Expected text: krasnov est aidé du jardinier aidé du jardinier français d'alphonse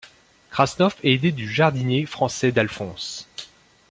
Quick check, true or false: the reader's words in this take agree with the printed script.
false